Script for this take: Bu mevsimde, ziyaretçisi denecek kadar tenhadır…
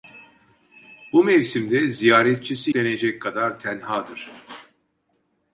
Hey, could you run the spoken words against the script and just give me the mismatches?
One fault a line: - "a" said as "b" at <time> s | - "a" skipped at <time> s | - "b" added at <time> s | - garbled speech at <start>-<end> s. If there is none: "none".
none